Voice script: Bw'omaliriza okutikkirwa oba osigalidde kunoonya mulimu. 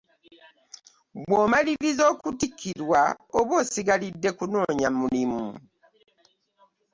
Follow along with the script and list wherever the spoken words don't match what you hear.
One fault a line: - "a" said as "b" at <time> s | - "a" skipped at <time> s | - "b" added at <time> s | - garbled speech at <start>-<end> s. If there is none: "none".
none